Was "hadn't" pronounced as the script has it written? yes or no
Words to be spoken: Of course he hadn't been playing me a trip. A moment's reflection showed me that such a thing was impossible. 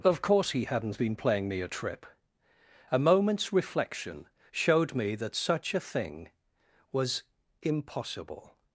yes